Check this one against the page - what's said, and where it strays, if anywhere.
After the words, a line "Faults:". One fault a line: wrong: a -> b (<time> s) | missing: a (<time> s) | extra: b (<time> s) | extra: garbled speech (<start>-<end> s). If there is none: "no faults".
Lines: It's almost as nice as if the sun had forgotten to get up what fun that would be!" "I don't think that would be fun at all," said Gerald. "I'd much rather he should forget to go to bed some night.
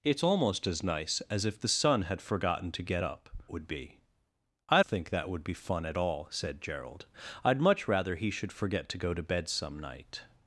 It's almost as nice as if the sun had forgotten to get up would be!" "I think that would be fun at all," said Gerald. "I'd much rather he should forget to go to bed some night.
Faults:
missing: what fun that (3.3 s)
missing: don't (4.8 s)